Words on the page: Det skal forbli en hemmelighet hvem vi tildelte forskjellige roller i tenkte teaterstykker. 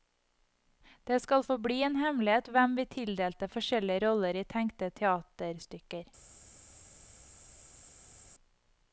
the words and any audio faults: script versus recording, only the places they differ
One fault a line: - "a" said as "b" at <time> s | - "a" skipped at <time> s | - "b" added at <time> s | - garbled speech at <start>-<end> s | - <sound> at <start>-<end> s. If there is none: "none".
none